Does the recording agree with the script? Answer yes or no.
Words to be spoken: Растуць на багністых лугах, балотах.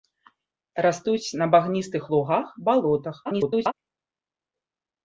no